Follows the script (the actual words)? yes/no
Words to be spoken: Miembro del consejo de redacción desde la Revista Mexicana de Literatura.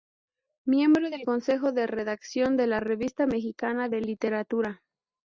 no